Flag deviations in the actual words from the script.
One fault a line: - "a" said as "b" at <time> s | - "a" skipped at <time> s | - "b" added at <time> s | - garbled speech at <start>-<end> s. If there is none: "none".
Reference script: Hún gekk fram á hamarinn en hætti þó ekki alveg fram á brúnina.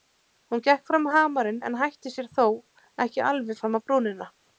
- "sér" added at 2.2 s